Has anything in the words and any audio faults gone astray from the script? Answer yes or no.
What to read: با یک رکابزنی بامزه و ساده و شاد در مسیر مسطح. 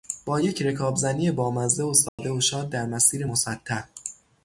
yes